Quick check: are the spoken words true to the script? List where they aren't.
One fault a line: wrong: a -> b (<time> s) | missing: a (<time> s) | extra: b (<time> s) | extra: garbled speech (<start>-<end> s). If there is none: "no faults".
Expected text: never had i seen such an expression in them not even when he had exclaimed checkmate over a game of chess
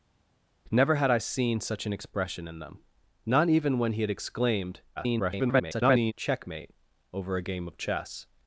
extra: garbled speech (5.0-6.1 s)